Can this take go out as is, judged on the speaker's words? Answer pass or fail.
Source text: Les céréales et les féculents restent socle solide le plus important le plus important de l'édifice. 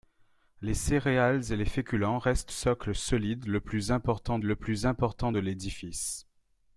pass